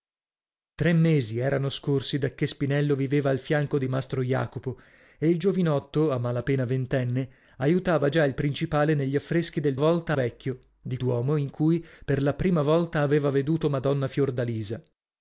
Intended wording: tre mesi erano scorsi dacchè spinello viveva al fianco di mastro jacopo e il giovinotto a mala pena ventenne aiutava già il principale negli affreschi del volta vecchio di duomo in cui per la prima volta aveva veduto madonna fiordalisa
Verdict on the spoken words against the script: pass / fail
pass